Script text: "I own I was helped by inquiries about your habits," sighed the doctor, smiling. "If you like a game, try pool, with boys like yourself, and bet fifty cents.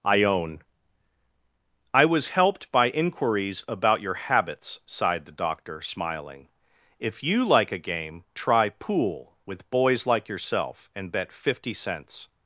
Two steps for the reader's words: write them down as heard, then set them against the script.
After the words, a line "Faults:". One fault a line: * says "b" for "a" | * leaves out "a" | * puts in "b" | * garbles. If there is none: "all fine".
"I own I was helped by inquiries about your habits," sighed the doctor, smiling. "If you like a game, try pool, with boys like yourself, and bet fifty cents.
Faults:
all fine